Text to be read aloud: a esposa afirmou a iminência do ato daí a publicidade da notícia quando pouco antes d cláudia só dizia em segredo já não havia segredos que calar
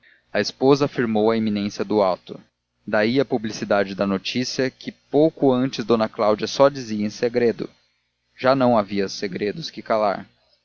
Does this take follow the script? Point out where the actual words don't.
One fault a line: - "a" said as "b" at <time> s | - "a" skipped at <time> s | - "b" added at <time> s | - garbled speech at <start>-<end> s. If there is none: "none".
- "quando" said as "que" at 4.7 s